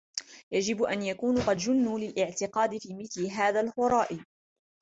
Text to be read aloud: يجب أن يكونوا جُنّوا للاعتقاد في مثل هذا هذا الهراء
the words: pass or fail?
fail